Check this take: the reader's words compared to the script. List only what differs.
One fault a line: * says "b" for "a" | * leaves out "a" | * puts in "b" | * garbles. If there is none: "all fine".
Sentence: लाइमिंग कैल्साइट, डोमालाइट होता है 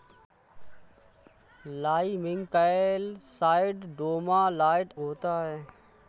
all fine